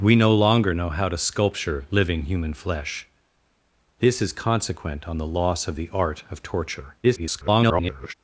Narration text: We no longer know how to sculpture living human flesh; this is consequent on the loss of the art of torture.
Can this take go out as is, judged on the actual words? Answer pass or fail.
fail